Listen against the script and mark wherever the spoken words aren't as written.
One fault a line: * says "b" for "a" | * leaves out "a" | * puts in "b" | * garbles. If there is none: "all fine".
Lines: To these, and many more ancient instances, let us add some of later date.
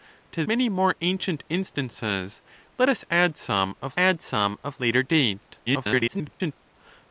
* leaves out "these and"
* puts in "add some of"
* garbles